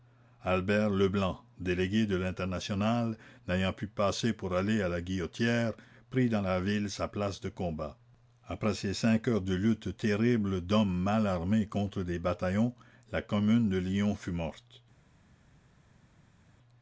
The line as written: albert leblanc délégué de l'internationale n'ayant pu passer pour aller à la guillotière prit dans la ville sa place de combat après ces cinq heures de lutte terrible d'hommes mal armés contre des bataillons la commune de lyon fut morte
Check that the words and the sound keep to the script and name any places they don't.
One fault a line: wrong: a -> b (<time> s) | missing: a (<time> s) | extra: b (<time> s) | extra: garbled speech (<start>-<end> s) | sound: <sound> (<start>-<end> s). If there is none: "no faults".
no faults